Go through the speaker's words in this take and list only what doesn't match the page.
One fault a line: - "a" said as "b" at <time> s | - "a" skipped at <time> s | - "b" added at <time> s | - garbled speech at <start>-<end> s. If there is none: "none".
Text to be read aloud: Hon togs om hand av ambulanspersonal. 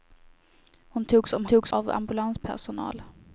- "hand" said as "togs" at 1.4 s